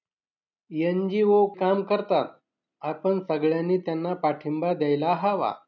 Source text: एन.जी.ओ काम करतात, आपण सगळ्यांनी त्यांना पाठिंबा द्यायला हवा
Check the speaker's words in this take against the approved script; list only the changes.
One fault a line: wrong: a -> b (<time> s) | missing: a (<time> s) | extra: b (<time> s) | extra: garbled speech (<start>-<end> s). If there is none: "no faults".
no faults